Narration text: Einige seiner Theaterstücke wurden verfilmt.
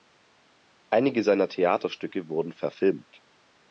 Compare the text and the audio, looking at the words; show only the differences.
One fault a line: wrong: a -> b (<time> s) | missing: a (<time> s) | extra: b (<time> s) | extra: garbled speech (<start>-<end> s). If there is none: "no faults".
no faults